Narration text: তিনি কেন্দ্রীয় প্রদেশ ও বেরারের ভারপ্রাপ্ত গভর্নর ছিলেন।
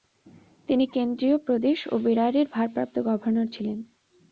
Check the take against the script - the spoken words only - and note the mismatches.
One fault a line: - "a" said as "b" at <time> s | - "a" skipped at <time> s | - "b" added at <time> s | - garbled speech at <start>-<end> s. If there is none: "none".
none